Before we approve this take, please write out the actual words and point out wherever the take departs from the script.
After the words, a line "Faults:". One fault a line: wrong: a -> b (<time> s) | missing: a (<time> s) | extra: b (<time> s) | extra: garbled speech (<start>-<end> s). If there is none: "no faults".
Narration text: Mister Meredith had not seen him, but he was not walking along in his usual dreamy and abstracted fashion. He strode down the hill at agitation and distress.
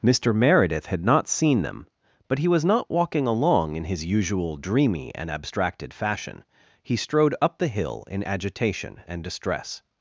Mister Meredith had not seen them, but he was not walking along in his usual dreamy and abstracted fashion. He strode up the hill in agitation and distress.
Faults:
wrong: him -> them (1.6 s)
wrong: down -> up (7.4 s)
wrong: at -> in (8.1 s)